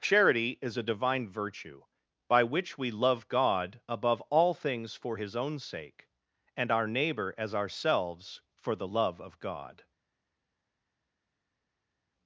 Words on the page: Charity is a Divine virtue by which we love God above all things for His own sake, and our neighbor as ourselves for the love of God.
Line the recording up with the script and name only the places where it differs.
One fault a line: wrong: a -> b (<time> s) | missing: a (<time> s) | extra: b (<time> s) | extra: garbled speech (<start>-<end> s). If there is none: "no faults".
no faults